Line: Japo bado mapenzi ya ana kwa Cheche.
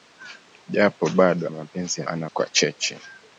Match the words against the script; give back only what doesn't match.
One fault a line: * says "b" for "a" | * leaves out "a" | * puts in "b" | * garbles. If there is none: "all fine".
all fine